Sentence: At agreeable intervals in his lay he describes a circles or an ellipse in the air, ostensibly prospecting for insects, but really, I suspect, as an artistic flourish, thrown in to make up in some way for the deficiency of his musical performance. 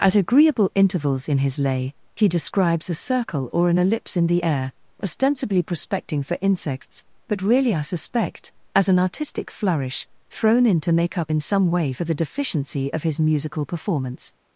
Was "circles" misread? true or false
true